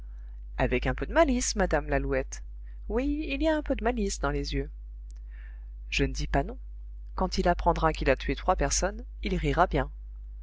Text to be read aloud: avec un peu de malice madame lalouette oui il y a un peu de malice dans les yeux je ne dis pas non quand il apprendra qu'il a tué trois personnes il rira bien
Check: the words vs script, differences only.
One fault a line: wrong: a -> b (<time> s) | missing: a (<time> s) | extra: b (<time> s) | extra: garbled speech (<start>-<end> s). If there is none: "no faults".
no faults